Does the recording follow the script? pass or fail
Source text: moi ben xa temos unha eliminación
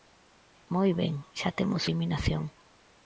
fail